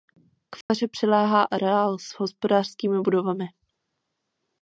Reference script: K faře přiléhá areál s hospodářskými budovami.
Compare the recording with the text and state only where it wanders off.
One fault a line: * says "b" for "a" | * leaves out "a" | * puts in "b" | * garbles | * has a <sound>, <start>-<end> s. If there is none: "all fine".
* has a dropout, 0.6-0.7 s